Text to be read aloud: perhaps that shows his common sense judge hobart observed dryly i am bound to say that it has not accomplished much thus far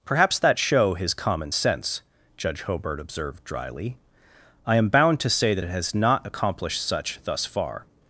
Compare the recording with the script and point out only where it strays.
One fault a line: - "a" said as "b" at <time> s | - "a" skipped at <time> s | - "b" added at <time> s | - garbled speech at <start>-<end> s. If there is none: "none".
- "shows" said as "show" at 0.6 s
- "much" said as "such" at 6.9 s